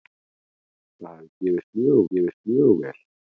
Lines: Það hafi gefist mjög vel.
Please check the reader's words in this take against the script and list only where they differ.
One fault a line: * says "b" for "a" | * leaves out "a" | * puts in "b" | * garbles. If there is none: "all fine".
* puts in "gefist mjög"